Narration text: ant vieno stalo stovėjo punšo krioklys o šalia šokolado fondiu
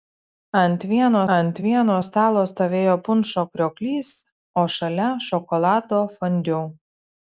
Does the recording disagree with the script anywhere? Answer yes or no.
yes